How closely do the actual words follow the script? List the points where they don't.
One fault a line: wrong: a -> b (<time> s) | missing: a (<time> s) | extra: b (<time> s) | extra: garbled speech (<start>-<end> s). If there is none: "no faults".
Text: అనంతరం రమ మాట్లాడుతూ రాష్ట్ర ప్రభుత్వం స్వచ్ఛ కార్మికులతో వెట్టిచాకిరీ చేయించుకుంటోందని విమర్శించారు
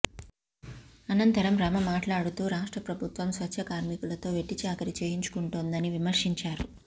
no faults